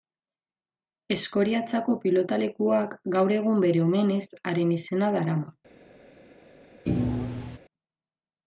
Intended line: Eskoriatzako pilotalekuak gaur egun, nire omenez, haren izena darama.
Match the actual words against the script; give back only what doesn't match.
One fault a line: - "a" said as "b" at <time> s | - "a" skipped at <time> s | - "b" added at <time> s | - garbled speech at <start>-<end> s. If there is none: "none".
- "nire" said as "bere" at 3.7 s